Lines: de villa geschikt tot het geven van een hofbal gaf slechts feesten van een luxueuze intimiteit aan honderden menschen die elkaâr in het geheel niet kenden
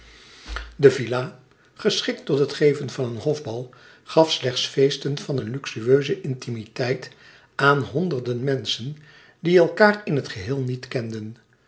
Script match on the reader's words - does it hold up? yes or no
yes